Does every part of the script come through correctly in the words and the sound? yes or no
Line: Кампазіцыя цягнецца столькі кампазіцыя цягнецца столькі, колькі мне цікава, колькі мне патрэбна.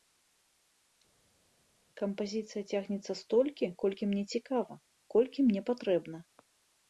no